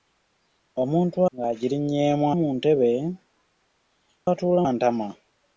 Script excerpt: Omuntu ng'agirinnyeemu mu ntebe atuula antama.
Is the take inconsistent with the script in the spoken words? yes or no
no